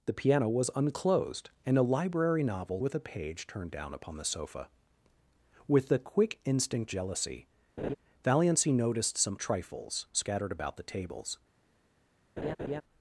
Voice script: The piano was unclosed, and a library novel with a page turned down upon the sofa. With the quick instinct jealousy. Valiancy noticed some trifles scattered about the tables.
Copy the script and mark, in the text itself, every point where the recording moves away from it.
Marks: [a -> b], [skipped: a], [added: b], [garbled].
The piano was unclosed, and a library novel with a page turned down upon the sofa. With the quick instinct jealousy. Valiancy noticed some trifles scattered about the tables.